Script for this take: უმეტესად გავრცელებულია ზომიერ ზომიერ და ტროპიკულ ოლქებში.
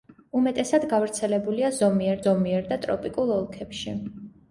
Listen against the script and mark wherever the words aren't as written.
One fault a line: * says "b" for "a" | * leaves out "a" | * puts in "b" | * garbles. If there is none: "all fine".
all fine